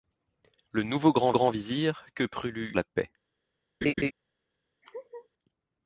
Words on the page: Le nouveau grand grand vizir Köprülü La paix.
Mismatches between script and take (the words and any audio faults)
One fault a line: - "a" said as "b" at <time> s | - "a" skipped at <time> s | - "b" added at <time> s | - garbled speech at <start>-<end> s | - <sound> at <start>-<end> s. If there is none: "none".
- laugh at 3.8-4.1 s
- laugh at 4.8-5.3 s